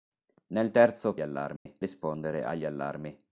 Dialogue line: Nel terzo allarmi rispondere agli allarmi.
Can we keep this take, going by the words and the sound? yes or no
no